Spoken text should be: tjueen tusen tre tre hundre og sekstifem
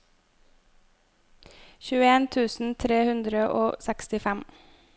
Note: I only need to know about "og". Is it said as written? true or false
true